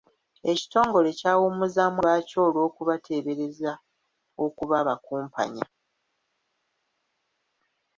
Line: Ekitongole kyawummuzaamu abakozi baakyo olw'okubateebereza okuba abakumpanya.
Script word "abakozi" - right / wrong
wrong